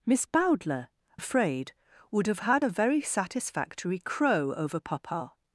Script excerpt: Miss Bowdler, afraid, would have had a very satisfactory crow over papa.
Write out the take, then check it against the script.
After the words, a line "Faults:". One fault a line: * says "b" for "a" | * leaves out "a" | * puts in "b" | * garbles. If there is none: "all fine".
Miss Bowdler, afraid, would have had a very satisfactory crow over papa.
Faults:
all fine